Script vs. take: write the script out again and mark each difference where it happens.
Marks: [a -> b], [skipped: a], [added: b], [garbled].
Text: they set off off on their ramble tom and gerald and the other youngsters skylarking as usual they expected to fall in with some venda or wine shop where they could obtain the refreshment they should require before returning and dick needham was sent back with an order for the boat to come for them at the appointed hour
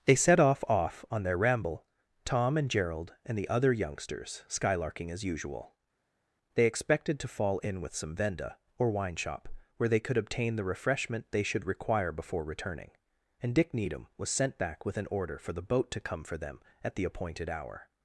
they set off off on their ramble tom and gerald and the other youngsters skylarking as usual they expected to fall in with some venda or wine shop where they could obtain the refreshment they should require before returning and dick needham was sent back with an order for the boat to come for them at the appointed hour